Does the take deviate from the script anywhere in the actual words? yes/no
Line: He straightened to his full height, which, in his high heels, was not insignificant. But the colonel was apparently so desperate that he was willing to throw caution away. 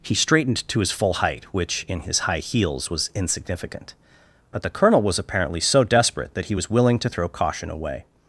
yes